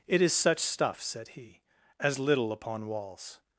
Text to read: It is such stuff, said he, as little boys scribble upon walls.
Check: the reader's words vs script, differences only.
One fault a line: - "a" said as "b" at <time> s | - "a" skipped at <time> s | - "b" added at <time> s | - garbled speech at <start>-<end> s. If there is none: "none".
- "boys scribble" skipped at 2.5 s